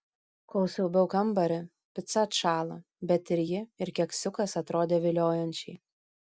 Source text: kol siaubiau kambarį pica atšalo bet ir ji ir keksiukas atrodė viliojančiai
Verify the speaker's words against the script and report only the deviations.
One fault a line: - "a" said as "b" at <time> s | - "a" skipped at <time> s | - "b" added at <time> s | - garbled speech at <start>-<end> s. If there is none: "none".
none